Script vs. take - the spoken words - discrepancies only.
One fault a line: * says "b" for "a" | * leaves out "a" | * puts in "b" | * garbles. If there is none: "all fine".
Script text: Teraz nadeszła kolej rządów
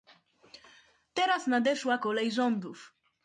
all fine